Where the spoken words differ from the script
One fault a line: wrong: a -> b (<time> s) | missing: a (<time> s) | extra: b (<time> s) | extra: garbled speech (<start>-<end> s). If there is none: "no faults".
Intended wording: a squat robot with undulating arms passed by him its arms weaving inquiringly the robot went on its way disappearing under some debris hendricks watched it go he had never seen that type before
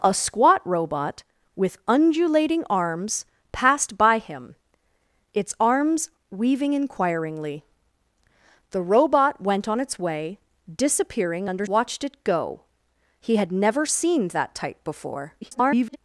missing: some debris hendricks (11.7 s)
extra: garbled speech (15.4-16.0 s)